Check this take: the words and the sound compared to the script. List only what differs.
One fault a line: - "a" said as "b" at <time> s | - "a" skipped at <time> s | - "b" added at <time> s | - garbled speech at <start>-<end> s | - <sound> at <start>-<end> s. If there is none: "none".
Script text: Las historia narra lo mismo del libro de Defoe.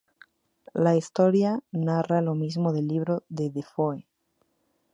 - "Las" said as "La" at 0.7 s